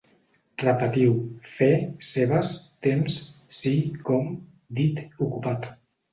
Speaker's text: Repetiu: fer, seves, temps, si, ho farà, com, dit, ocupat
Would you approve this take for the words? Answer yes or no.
no